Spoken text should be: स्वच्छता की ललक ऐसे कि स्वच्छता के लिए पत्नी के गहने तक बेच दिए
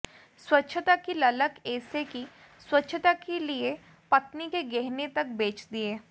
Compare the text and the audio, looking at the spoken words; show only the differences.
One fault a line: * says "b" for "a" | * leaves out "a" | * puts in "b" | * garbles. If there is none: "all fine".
all fine